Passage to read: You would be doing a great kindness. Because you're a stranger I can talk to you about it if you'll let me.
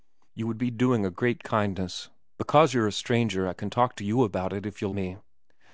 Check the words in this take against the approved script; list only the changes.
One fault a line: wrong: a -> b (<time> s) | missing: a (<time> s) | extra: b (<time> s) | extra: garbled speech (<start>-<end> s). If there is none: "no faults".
missing: let (4.9 s)